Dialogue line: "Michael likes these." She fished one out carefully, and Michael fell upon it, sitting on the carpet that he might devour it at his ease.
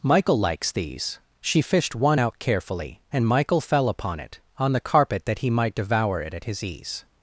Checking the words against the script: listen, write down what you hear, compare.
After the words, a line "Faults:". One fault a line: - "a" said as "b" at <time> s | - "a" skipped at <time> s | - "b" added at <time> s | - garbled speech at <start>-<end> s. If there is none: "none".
"Michael likes these." She fished one out carefully, and Michael fell upon it, on the carpet that he might devour it at his ease.
Faults:
- "sitting" skipped at 4.4 s